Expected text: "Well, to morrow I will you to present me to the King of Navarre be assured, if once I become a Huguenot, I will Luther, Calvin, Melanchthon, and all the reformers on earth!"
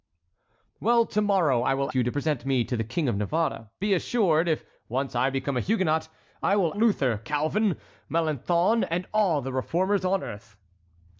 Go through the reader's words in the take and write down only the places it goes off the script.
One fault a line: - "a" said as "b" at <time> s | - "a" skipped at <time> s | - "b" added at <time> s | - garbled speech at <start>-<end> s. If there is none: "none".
none